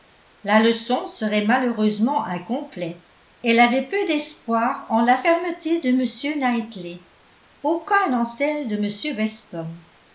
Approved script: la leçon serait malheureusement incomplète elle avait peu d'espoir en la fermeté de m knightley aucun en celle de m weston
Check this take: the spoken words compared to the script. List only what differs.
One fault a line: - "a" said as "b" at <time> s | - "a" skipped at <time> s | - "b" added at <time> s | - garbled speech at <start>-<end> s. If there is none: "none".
none